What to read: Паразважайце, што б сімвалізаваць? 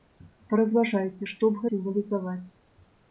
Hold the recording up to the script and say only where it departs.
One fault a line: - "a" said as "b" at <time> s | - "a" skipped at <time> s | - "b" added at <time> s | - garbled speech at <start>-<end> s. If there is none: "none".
none